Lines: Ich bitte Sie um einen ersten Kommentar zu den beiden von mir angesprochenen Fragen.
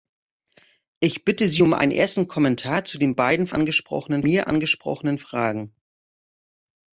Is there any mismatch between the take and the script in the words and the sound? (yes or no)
yes